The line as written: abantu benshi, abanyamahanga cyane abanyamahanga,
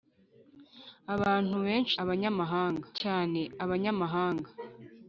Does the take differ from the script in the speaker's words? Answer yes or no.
no